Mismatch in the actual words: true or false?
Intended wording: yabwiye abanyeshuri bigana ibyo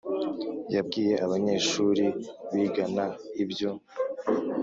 false